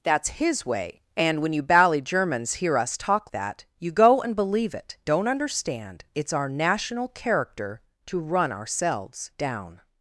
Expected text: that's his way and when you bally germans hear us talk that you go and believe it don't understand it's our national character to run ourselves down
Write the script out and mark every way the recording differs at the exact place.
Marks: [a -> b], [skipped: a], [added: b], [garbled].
that's his way and when you bally germans hear us talk that you go and believe it don't understand it's our national character to run ourselves down